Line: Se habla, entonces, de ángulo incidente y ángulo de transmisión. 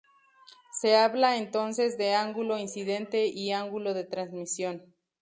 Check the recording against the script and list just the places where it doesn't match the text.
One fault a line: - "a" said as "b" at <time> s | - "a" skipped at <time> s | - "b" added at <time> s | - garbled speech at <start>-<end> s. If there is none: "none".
none